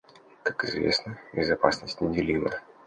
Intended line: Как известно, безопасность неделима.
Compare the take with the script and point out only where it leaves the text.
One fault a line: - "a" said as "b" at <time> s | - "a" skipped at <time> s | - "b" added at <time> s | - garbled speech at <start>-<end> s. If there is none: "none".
none